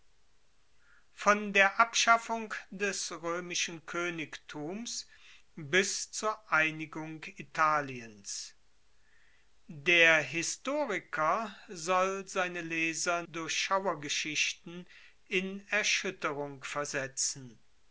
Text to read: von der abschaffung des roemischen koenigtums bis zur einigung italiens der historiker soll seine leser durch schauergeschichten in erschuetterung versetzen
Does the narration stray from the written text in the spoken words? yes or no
no